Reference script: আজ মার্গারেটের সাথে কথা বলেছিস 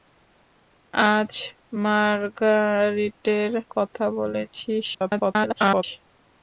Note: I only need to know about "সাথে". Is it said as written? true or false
false